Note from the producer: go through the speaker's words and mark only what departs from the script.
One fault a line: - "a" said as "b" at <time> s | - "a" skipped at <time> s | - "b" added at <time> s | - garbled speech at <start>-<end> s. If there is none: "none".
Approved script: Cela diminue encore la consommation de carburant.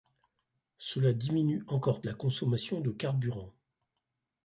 none